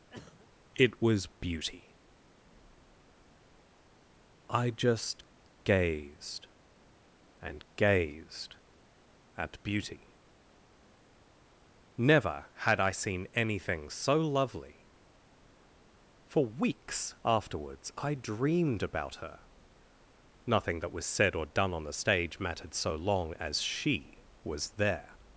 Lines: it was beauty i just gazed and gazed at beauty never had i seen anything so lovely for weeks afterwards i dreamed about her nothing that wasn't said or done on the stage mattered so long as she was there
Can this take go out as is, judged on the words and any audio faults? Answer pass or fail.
fail